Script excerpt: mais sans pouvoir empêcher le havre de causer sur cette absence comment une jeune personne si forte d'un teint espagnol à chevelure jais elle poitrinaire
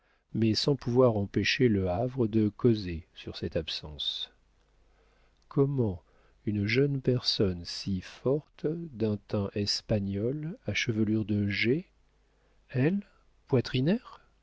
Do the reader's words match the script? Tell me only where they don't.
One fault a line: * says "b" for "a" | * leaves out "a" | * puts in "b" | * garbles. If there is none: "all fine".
* puts in "de"